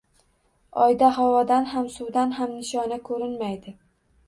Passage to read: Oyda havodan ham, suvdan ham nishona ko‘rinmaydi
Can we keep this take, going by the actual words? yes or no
yes